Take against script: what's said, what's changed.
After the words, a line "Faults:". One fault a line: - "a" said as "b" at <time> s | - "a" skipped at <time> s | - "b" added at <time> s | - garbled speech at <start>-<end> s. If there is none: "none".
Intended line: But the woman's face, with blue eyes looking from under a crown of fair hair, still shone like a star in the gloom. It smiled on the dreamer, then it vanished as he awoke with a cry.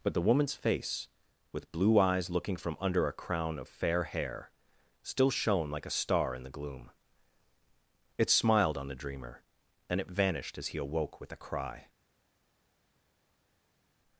But the woman's face, with blue eyes looking from under a crown of fair hair, still shone like a star in the gloom. It smiled on the dreamer, and it vanished as he awoke with a cry.
Faults:
- "then" said as "and" at 9.9 s